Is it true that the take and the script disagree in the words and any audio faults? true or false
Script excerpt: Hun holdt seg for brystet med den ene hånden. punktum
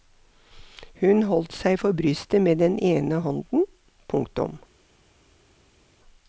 false